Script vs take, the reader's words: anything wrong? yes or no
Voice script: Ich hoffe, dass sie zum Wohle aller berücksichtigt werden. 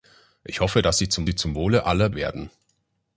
yes